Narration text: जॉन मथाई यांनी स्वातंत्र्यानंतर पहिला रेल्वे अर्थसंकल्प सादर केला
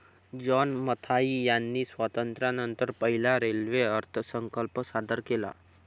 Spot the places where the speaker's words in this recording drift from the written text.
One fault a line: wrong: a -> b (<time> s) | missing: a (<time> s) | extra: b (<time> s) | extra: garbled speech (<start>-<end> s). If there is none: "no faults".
no faults